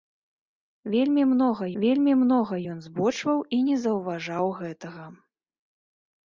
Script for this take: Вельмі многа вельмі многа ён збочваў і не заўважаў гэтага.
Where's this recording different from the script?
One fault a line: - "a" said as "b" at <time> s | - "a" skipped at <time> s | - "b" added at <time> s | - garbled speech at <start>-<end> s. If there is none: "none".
none